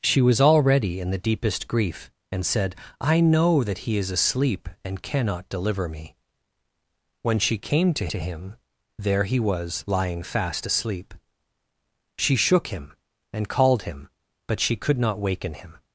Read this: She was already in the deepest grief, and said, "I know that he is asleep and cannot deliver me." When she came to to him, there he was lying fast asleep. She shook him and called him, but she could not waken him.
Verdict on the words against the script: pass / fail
pass